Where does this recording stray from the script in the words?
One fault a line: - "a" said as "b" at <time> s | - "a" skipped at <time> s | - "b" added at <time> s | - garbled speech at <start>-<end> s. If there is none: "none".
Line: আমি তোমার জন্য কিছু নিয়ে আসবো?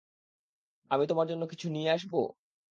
none